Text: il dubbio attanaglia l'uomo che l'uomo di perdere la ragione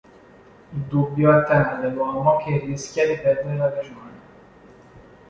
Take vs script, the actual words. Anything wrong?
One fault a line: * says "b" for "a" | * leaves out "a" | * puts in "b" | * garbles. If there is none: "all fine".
* says "rischia" for "l'uomo"